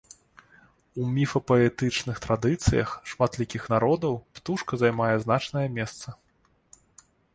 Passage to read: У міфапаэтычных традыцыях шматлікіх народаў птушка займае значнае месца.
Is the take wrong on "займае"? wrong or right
right